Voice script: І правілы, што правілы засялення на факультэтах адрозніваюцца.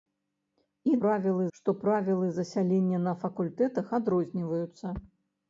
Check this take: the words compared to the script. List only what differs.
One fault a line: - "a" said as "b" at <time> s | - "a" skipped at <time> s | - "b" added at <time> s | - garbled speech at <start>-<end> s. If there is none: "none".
none